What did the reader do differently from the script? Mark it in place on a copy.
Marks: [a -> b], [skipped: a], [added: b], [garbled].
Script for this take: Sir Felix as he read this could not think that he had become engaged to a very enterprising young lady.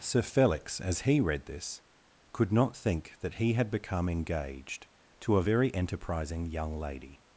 Sir Felix as he read this could not think that he had become engaged to a very enterprising young lady.